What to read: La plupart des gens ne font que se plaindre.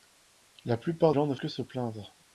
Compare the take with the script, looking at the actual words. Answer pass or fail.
fail